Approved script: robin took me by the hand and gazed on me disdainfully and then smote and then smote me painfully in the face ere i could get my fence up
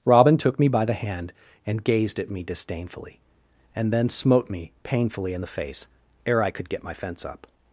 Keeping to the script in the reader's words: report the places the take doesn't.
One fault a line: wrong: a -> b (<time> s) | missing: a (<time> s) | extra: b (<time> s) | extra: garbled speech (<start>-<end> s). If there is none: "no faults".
wrong: on -> at (2.2 s)
missing: and then smote (4.5 s)